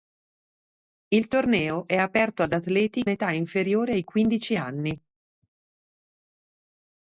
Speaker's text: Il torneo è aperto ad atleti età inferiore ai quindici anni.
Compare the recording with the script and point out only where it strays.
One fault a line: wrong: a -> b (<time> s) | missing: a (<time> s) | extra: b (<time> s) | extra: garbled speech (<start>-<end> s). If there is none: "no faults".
no faults